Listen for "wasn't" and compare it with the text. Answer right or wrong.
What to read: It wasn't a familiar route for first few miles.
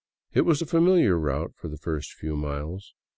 wrong